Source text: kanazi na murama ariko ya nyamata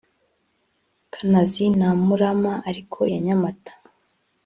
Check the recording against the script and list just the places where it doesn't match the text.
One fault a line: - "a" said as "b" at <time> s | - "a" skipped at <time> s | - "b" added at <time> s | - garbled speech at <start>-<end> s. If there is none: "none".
none